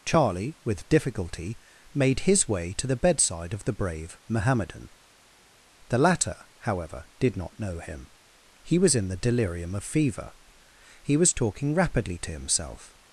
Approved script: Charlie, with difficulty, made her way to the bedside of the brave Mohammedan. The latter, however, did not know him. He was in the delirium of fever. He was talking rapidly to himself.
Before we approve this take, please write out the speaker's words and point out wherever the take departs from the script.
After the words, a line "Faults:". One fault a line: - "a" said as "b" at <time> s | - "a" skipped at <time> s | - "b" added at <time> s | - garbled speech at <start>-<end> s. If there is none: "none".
Charlie, with difficulty, made his way to the bedside of the brave Mohammedan. The latter, however, did not know him. He was in the delirium of fever. He was talking rapidly to himself.
Faults:
- "her" said as "his" at 2.2 s